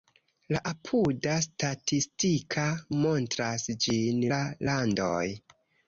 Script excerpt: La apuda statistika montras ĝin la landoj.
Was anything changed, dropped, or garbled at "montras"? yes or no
no